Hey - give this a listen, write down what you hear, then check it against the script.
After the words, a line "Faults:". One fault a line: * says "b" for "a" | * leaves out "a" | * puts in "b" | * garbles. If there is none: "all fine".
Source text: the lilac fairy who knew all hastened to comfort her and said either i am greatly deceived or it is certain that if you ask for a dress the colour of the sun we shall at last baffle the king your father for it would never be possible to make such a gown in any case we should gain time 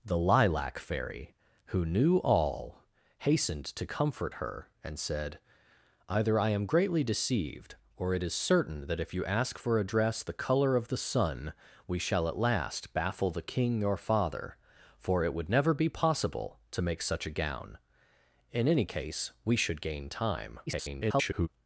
the lilac fairy who knew all hastened to comfort her and said either i am greatly deceived or it is certain that if you ask for a dress the colour of the sun we shall at last baffle the king your father for it would never be possible to make such a gown in any case we should gain time [garbled]
Faults:
* garbles